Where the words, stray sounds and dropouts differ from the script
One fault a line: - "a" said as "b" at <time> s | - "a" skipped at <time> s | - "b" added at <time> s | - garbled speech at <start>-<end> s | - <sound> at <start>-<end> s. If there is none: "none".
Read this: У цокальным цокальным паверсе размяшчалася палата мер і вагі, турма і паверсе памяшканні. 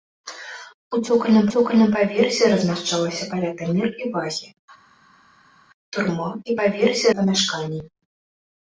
none